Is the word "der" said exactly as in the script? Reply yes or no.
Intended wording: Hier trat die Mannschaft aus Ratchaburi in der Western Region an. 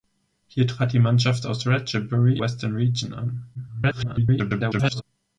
no